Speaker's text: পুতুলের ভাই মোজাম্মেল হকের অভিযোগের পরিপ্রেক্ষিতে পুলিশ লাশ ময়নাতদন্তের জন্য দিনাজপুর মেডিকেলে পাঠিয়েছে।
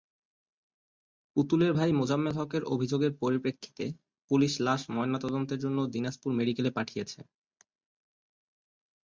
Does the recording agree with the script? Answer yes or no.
yes